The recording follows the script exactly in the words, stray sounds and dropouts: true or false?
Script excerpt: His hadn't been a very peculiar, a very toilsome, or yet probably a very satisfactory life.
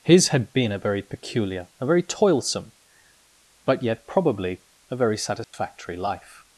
false